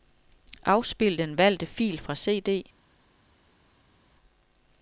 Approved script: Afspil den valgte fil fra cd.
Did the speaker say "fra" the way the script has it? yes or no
yes